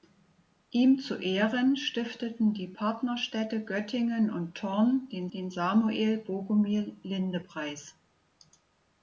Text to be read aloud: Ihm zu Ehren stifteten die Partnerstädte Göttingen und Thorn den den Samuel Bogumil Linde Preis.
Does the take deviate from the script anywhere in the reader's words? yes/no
no